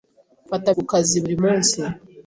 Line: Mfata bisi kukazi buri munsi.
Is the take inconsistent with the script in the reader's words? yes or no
yes